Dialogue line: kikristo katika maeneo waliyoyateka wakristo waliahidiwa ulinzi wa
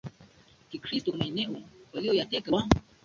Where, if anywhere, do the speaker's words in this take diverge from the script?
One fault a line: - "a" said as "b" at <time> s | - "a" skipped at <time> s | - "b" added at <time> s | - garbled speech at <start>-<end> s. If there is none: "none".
- "katika" skipped at 1.1 s
- "wakristo waliahidiwa ulinzi" skipped at 2.5 s